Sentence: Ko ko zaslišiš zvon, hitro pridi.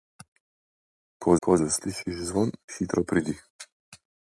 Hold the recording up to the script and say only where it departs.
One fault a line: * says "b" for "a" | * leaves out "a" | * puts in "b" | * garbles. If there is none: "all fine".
all fine